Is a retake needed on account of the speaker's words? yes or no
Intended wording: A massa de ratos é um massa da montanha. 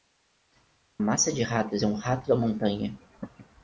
yes